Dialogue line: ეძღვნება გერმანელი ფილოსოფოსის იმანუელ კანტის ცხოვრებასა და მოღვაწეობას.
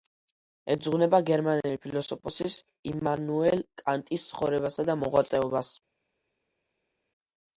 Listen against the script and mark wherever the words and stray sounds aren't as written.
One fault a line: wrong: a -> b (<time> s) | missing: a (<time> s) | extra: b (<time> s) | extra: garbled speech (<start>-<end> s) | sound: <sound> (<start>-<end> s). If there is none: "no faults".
no faults